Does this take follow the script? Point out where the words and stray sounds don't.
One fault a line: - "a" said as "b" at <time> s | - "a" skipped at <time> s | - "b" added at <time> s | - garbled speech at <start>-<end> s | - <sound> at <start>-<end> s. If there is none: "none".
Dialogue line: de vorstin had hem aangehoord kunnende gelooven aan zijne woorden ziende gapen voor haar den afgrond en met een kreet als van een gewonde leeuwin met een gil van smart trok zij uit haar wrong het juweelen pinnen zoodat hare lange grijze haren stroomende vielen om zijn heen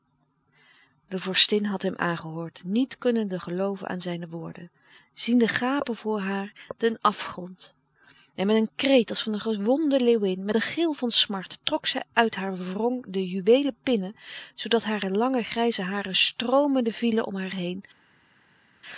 - "niet" added at 2.6 s
- "het" said as "de" at 13.1 s
- "zijn" said as "haar" at 17.3 s